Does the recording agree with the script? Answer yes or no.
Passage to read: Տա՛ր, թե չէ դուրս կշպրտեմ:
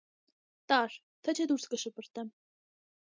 yes